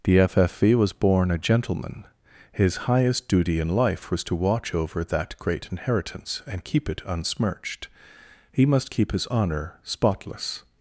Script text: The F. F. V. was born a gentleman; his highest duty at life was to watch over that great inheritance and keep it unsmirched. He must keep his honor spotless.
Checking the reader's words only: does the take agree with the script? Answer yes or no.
no